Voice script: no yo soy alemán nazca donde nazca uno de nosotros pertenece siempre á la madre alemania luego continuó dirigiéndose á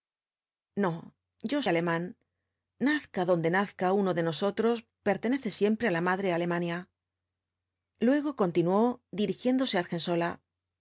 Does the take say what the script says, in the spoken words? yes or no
no